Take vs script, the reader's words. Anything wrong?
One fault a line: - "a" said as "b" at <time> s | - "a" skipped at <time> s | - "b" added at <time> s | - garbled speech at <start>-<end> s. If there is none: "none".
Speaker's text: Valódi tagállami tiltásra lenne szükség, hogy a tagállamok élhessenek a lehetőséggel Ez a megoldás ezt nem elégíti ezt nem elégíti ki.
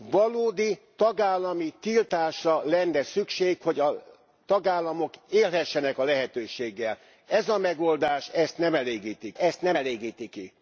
none